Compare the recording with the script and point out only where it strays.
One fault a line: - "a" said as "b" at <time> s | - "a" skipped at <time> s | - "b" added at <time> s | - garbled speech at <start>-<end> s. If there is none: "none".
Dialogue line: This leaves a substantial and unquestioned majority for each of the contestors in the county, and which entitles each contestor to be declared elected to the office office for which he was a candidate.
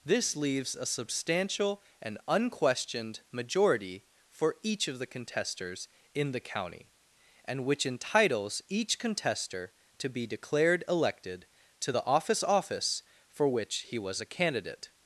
none